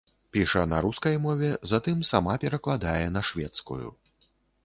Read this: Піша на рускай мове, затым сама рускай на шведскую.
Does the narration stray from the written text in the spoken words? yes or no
yes